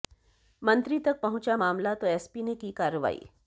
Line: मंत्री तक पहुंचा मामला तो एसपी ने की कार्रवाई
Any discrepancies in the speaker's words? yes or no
no